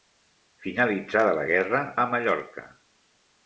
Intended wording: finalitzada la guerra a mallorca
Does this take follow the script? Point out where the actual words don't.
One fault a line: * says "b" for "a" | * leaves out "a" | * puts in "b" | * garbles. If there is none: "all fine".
all fine